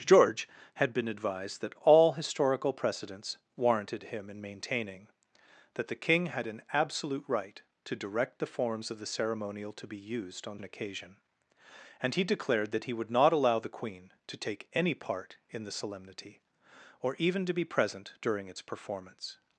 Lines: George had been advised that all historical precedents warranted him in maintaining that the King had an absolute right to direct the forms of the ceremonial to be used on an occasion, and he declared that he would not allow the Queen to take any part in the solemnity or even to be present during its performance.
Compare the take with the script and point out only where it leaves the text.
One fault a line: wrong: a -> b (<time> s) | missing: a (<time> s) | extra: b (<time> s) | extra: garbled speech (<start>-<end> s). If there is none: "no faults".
no faults